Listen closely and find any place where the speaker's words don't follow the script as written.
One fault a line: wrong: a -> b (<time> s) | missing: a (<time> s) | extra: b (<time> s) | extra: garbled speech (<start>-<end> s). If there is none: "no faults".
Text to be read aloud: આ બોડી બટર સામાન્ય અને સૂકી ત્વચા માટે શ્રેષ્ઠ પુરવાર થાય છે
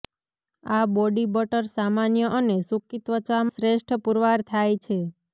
missing: માટે (3.4 s)